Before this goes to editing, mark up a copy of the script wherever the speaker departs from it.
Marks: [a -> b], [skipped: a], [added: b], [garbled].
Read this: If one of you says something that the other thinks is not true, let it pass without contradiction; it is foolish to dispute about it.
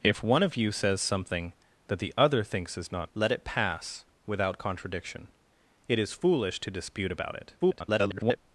If one of you says something that the other thinks is not [skipped: true,] let it pass without contradiction; it is foolish to dispute about it. [garbled]